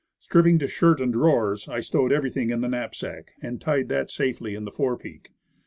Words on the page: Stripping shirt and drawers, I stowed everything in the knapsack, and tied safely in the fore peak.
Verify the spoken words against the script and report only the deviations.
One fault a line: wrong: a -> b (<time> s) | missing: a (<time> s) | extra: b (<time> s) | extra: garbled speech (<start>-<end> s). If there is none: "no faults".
extra: to (0.6 s)
extra: that (3.9 s)